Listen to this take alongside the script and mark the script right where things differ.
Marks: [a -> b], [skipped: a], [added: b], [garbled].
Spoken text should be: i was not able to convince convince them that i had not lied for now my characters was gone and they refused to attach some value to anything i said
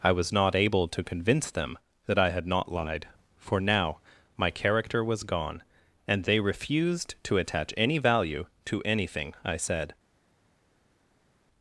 i was not able to convince [skipped: convince] them that i had not lied for now my [characters -> character] was gone and they refused to attach [some -> any] value to anything i said